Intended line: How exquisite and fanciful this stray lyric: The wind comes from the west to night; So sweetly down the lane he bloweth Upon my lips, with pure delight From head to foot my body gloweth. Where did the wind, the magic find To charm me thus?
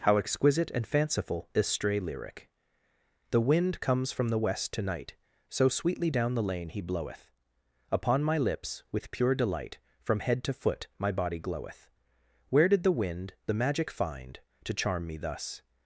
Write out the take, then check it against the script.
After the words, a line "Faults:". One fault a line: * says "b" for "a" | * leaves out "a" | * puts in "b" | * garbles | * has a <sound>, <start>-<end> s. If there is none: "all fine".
How exquisite and fanciful is stray lyric: The wind comes from the west to night; So sweetly down the lane he bloweth Upon my lips, with pure delight From head to foot my body gloweth. Where did the wind, the magic find To charm me thus?
Faults:
* says "is" for "this"